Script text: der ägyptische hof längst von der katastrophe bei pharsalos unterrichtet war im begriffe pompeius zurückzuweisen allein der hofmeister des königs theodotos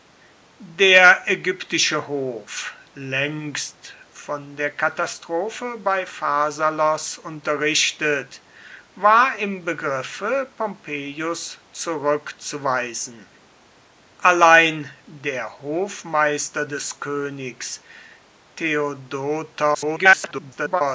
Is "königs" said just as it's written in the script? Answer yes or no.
yes